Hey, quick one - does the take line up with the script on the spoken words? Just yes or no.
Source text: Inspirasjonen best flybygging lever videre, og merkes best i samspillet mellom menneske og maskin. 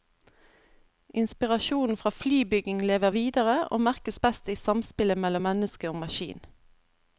no